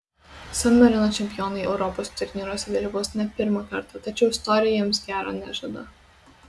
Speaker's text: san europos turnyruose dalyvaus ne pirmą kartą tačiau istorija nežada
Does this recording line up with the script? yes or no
no